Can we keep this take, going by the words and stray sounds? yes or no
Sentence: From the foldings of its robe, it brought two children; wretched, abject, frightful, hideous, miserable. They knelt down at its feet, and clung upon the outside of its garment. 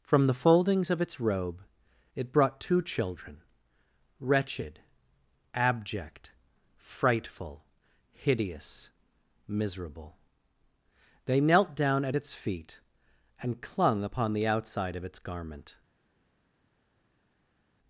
yes